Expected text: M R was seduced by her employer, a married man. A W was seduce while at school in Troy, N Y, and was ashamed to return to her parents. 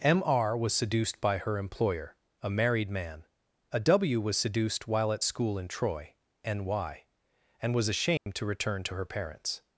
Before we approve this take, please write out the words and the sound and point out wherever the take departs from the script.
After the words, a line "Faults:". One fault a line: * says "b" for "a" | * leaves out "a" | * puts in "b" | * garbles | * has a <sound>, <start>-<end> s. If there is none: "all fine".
M R was seduced by her employer, a married man. A W was seduced while at school in Troy, N Y, and was ashamed to return to her parents.
Faults:
* says "seduced" for "seduce"
* has a dropout, 8.2-8.3 s